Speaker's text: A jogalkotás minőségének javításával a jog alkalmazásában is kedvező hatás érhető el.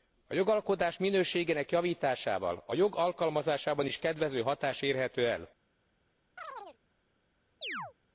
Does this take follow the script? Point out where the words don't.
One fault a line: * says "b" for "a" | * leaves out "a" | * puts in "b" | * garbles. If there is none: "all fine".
all fine